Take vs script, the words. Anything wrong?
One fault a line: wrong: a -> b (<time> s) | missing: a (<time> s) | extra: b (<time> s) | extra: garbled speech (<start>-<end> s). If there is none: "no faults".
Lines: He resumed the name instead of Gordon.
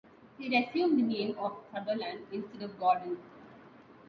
extra: of Sutherland (1.4 s)